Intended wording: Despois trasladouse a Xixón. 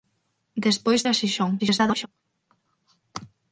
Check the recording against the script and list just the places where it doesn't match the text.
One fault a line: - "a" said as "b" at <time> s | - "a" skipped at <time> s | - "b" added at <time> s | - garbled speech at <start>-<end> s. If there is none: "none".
- "trasladouse" skipped at 1.0 s
- garbled speech at 1.6-2.1 s